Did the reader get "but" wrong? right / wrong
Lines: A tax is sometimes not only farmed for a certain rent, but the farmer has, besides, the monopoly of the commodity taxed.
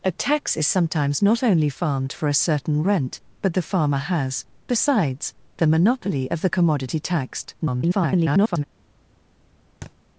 right